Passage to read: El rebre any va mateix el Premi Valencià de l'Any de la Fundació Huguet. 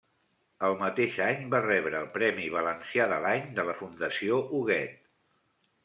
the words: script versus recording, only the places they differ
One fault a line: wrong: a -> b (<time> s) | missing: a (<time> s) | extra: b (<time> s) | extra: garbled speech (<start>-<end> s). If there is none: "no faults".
wrong: rebre -> mateix (0.8 s)
wrong: mateix -> rebre (1.6 s)